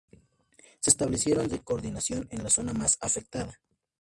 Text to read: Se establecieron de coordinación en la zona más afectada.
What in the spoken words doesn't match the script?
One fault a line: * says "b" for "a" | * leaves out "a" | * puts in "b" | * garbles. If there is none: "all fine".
all fine